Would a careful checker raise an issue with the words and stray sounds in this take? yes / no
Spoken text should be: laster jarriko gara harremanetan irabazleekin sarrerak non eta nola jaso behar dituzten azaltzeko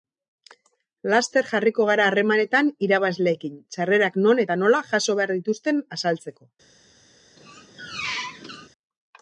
yes